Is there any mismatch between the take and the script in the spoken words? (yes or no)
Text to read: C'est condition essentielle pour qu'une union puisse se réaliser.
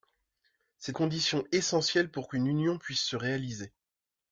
no